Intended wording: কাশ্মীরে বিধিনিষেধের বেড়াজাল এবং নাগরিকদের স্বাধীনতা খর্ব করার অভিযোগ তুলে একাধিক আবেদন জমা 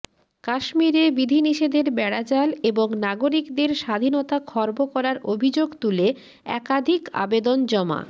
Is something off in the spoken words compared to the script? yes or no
no